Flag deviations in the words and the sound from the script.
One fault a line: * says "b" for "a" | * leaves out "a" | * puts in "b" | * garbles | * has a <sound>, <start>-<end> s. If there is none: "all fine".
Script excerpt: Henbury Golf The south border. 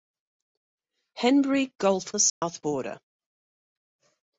* has a dropout, 2.3-2.4 s